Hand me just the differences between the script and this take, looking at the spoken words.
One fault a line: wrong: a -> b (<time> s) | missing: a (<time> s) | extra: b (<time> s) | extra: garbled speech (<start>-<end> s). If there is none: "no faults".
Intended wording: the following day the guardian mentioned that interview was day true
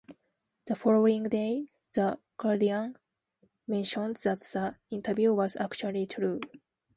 extra: the (4.4 s)
wrong: day -> actually (5.6 s)